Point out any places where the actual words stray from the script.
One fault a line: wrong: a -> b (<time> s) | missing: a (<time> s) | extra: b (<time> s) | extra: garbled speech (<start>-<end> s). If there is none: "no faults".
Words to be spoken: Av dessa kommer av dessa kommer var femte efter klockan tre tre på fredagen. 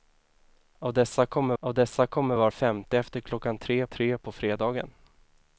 no faults